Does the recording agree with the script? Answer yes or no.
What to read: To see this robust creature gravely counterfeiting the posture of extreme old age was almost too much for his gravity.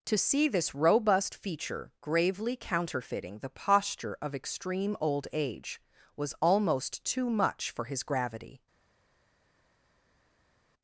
no